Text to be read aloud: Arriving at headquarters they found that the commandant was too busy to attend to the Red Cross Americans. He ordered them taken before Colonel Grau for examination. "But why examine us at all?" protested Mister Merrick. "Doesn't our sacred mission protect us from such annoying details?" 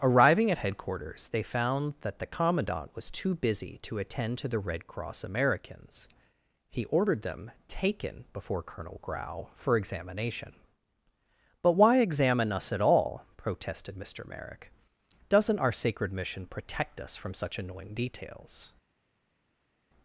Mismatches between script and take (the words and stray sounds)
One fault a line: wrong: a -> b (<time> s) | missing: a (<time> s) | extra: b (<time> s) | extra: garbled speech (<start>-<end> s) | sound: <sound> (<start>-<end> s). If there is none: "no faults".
no faults